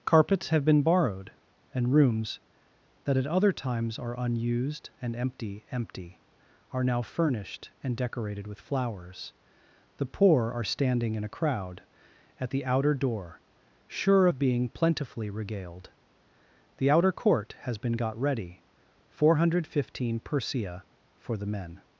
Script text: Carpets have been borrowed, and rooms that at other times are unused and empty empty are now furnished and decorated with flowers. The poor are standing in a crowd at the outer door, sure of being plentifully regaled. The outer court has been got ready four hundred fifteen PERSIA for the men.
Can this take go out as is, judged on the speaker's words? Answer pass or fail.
pass